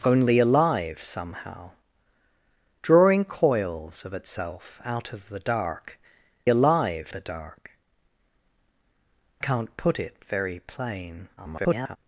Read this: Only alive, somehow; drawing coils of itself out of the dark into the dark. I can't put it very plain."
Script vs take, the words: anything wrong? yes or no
yes